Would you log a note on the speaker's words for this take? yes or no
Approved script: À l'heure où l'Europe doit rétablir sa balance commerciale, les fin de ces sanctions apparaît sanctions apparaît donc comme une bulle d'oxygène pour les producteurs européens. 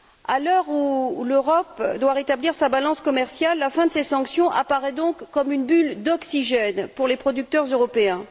yes